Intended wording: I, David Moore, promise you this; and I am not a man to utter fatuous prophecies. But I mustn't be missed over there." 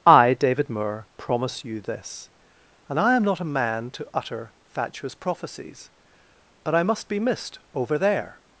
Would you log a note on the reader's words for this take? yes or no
yes